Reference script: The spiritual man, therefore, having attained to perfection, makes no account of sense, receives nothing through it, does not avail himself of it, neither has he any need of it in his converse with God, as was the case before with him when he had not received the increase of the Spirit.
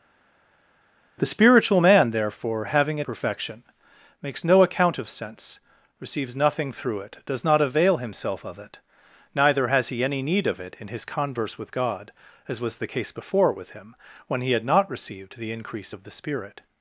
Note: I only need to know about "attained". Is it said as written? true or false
false